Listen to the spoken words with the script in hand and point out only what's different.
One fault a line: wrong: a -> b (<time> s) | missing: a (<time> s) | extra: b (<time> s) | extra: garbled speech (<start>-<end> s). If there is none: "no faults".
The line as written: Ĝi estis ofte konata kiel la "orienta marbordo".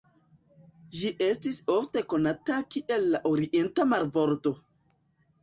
no faults